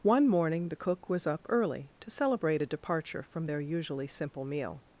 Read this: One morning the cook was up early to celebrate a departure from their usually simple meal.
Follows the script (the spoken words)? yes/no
yes